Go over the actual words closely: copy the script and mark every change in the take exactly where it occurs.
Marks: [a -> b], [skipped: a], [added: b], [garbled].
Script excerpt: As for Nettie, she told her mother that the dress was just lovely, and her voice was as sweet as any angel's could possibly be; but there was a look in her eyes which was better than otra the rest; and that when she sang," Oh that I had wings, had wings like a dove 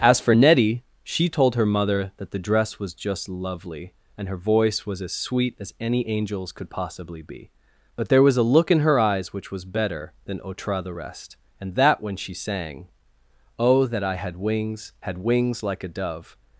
As for Nettie, she told her mother that the dress was just lovely, and her voice was as sweet as any angel's could possibly be; but there was a look in her eyes which was better than otra the rest; and that when she sang," Oh that I had wings, had wings like a dove